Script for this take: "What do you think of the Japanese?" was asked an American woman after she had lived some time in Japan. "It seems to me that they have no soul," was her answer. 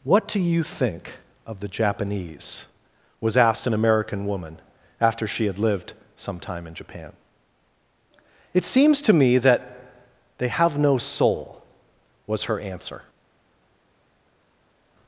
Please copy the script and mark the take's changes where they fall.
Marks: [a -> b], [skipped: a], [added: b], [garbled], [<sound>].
"What do you think of the Japanese?" was asked an American woman after she had lived some time in Japan. "It seems to me that they have no soul," was her answer.